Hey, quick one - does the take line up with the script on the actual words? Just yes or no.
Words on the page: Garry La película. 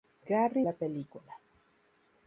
yes